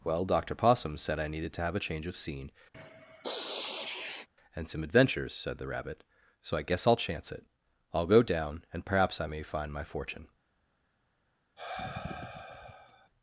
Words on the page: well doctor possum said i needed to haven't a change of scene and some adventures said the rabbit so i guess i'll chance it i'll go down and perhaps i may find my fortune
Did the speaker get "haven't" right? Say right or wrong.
wrong